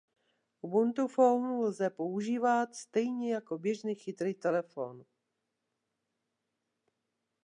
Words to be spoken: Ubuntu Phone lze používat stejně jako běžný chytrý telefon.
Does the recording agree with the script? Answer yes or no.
yes